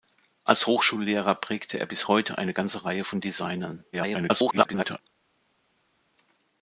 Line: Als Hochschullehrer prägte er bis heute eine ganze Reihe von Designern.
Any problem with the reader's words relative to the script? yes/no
yes